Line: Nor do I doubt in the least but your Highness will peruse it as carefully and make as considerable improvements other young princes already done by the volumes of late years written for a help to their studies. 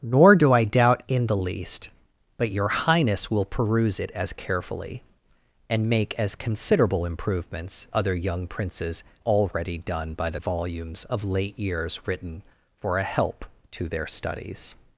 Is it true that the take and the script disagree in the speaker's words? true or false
false